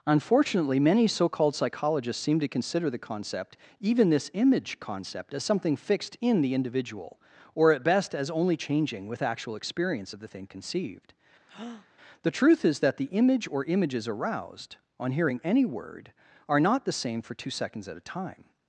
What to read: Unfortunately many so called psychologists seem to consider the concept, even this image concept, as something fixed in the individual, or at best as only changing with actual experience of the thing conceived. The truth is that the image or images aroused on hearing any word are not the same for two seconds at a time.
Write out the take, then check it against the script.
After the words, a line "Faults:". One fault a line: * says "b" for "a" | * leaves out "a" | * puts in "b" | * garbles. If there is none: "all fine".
Unfortunately many so called psychologists seem to consider the concept, even this image concept, as something fixed in the individual, or at best as only changing with actual experience of the thing conceived. The truth is that the image or images aroused on hearing any word are not the same for two seconds at a time.
Faults:
all fine